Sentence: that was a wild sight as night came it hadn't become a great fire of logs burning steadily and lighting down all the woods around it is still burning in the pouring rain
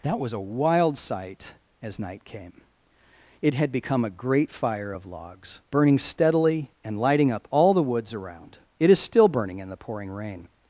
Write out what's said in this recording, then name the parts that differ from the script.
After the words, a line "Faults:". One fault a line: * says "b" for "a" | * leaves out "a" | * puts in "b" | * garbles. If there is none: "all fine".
that was a wild sight as night came it had become a great fire of logs burning steadily and lighting up all the woods around it is still burning in the pouring rain
Faults:
* says "had" for "hadn't"
* says "up" for "down"